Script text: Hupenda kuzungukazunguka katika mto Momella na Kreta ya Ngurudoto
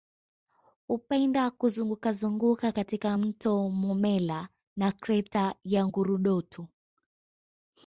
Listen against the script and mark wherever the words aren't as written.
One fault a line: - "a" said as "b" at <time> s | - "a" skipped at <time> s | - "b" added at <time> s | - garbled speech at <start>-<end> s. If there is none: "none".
none